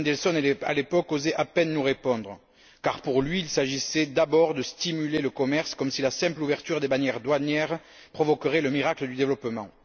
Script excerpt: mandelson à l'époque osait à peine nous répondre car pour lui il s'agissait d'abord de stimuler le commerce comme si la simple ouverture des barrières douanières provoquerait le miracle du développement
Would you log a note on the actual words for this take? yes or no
no